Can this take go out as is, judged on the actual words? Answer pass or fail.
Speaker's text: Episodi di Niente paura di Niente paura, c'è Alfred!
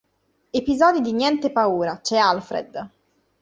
fail